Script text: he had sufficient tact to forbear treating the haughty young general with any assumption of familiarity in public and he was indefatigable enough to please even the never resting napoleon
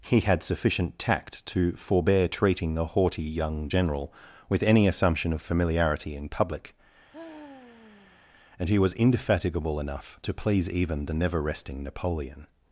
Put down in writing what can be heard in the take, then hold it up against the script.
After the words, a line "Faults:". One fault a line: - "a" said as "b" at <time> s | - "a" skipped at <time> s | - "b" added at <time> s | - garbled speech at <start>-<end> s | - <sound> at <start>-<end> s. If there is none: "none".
he had sufficient tact to forbear treating the haughty young general with any assumption of familiarity in public and he was indefatigable enough to please even the never resting napoleon
Faults:
- sigh at 7.1-8.2 s